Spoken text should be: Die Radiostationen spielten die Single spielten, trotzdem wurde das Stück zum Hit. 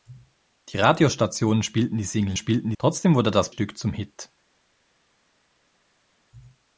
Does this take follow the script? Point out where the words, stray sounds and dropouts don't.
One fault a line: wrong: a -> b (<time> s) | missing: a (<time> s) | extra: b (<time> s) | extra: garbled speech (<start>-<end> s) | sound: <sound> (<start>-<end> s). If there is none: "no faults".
no faults